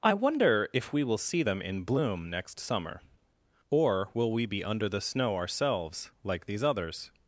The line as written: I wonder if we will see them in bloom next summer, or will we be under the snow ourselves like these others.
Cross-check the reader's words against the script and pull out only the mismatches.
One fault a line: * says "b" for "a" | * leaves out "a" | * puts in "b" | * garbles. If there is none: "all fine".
all fine